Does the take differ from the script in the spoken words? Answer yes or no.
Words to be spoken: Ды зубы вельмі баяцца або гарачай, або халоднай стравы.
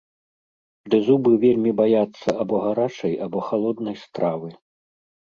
no